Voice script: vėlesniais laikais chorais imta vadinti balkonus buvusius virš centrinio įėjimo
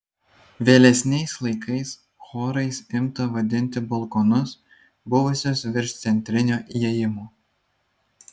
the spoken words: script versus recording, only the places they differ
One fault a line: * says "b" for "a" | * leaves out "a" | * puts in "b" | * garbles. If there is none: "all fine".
all fine